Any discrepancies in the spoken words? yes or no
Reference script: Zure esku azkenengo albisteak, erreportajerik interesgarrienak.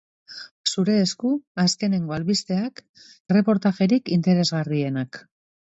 no